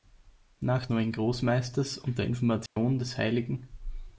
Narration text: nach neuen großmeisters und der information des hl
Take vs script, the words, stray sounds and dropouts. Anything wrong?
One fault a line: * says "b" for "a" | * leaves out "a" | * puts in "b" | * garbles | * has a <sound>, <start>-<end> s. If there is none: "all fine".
* has a dropout, 2.7-2.8 s